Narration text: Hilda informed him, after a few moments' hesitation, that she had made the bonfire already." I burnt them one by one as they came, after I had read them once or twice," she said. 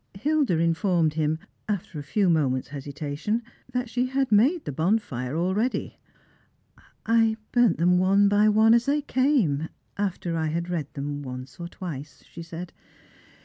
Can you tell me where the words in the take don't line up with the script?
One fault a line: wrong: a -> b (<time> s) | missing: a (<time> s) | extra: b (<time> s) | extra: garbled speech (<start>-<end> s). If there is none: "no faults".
no faults